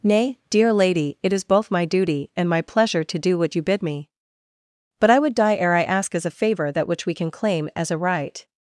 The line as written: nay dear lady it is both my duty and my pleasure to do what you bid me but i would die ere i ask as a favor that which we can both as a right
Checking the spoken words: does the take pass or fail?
fail